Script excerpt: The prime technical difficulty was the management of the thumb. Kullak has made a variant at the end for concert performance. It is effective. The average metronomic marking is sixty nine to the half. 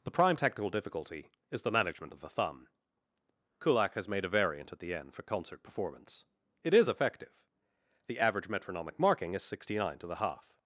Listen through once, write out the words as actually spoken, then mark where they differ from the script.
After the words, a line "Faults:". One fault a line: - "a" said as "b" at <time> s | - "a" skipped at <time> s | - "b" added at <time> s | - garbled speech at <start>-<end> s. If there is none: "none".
The prime technical difficulty is the management of the thumb. Kullak has made a variant at the end for concert performance. It is effective. The average metronomic marking is sixty nine to the half.
Faults:
- "was" said as "is" at 1.5 s